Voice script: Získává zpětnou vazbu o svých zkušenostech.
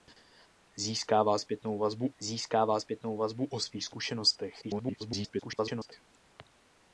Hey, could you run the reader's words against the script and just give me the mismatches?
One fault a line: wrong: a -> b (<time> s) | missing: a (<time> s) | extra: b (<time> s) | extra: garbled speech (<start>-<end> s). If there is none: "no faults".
extra: získává zpětnou vazbu (2.2 s)
extra: garbled speech (4.6-5.9 s)